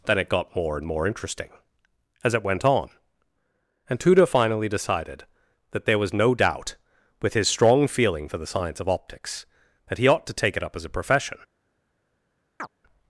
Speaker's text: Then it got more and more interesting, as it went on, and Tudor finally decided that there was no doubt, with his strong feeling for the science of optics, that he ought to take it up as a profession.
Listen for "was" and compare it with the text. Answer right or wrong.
right